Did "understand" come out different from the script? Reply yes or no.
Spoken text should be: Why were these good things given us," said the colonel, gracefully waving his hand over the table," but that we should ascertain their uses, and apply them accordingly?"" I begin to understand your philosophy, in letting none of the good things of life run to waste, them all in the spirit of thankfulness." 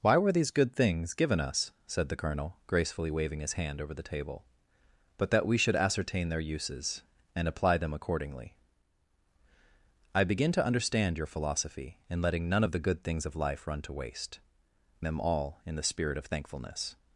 no